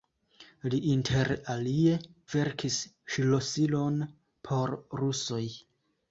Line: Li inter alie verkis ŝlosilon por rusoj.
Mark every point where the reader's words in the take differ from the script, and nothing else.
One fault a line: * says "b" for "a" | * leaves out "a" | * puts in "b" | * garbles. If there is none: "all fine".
all fine